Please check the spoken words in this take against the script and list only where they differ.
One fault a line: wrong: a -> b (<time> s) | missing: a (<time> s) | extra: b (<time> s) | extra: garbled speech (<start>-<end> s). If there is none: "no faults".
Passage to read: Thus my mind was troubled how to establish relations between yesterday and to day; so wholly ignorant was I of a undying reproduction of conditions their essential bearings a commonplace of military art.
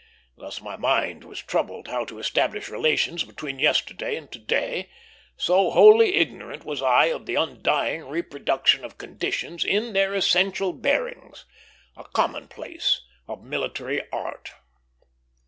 wrong: a -> the (7.3 s)
extra: in (9.6 s)